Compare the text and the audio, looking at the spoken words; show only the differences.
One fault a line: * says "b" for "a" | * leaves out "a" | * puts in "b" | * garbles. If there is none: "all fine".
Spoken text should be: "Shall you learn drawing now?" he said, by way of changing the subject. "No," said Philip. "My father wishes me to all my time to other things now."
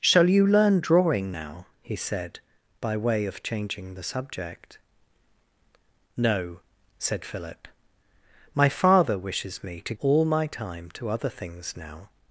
all fine